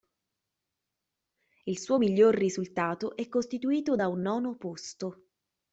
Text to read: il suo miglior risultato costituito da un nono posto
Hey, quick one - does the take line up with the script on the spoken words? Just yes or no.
no